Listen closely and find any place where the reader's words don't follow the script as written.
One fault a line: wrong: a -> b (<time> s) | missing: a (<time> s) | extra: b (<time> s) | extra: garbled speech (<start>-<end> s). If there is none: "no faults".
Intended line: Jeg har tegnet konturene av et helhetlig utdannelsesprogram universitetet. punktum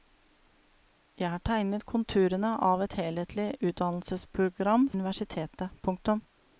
no faults